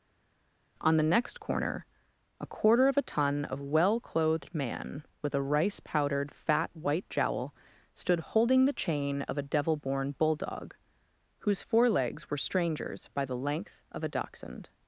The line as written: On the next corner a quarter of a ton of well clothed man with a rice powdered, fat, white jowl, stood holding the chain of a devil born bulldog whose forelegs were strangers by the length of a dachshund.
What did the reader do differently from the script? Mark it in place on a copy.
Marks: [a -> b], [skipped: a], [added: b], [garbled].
On the next corner a quarter of a ton of well clothed man with a rice powdered, fat, white jowl, stood holding the chain of a devil born bulldog whose forelegs were strangers by the length of a dachshund.